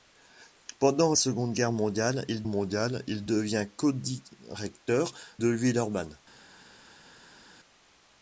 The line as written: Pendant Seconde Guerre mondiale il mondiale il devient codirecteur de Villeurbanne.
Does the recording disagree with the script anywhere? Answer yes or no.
no